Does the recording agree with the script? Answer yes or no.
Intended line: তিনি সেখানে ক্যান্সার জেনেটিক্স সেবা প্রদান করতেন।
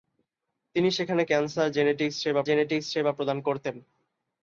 no